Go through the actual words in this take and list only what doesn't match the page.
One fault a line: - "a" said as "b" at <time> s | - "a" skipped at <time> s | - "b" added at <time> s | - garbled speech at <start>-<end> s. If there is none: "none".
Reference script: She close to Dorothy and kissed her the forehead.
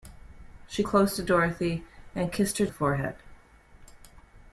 none